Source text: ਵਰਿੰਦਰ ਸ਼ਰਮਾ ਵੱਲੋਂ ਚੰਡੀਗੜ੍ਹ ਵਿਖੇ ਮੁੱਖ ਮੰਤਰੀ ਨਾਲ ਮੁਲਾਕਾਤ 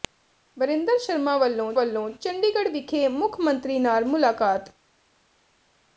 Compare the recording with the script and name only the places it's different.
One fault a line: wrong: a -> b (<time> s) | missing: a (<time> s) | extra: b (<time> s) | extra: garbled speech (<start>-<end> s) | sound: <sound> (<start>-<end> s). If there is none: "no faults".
extra: ਵੱਲੋਂ (1.7 s)